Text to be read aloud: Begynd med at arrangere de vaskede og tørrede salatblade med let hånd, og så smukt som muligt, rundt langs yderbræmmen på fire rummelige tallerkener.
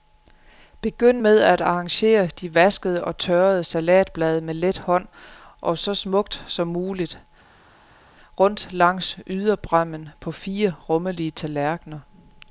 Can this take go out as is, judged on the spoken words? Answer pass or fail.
pass